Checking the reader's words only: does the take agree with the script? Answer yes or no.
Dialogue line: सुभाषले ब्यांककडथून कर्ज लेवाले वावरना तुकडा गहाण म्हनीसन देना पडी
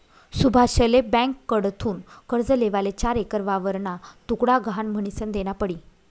no